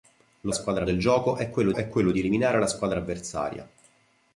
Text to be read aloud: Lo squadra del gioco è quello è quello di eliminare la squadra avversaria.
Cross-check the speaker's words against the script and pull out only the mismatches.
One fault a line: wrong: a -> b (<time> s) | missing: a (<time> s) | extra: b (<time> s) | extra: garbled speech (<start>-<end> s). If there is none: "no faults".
no faults